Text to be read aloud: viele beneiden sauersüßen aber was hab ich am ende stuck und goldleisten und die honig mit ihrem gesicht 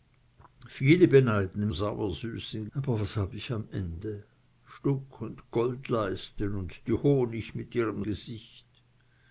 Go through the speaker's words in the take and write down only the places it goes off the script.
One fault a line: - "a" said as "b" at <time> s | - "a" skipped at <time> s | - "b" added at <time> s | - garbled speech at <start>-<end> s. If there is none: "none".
none